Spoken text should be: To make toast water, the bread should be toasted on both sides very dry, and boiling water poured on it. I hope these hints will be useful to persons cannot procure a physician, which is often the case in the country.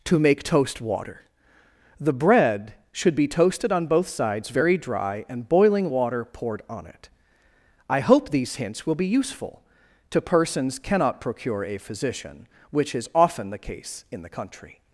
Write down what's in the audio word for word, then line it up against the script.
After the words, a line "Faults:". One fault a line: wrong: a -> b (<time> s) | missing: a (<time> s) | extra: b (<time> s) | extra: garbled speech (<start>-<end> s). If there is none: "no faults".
To make toast water, the bread should be toasted on both sides very dry, and boiling water poured on it. I hope these hints will be useful to persons cannot procure a physician, which is often the case in the country.
Faults:
no faults